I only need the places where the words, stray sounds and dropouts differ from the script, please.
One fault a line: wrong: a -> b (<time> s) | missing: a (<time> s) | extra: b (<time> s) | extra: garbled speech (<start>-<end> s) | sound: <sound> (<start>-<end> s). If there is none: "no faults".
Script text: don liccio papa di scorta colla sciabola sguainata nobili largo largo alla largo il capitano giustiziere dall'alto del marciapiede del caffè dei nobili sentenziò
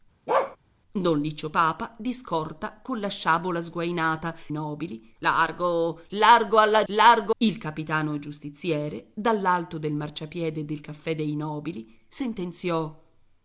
sound: bark (0.3-0.6 s)